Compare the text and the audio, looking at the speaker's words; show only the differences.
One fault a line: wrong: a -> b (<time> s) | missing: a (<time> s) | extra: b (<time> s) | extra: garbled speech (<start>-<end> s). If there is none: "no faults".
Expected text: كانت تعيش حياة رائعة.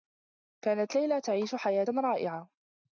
extra: ليلى (0.9 s)